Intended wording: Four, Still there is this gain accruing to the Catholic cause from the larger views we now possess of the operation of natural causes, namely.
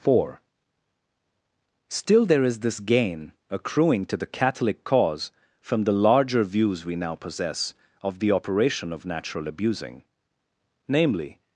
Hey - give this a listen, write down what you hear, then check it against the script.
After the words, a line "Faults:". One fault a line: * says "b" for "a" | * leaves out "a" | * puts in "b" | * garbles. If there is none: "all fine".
Four, Still there is this gain accruing to the Catholic cause from the larger views we now possess of the operation of natural abusing, namely.
Faults:
* says "abusing" for "causes"